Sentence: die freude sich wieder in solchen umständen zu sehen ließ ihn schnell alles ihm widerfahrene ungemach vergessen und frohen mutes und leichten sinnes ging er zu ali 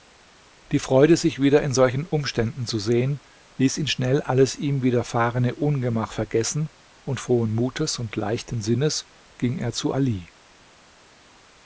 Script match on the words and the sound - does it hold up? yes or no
yes